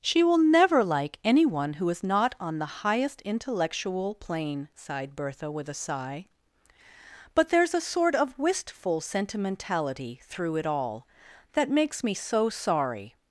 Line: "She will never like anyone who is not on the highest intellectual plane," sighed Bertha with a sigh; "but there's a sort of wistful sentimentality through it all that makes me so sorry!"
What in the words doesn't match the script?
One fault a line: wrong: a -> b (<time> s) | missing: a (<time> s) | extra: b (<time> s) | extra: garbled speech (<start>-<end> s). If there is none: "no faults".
no faults